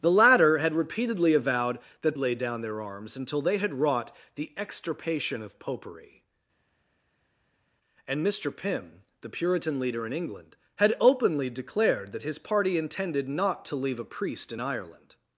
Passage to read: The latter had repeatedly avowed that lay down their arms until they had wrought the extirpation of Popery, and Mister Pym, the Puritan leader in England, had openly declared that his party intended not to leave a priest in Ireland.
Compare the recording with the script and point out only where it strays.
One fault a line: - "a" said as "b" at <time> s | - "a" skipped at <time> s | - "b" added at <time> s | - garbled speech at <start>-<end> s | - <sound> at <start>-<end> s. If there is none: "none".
none